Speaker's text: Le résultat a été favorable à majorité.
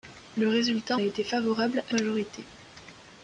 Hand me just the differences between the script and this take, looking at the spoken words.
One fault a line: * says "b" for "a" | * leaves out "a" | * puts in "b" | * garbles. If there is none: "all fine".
all fine